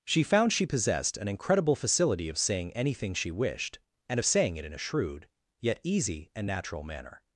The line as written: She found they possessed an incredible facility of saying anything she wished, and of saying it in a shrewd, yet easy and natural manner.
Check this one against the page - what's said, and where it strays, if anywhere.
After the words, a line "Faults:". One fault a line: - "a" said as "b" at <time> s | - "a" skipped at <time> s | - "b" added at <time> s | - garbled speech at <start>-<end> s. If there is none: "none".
She found she possessed an incredible facility of saying anything she wished, and of saying it in a shrewd, yet easy and natural manner.
Faults:
- "they" said as "she" at 0.5 s